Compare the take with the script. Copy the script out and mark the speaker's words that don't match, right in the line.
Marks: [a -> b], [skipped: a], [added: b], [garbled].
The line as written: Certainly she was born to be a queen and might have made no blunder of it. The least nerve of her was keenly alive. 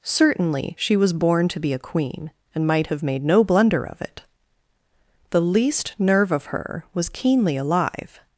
Certainly she was born to be a queen and might have made no blunder of it. The least nerve of her was keenly alive.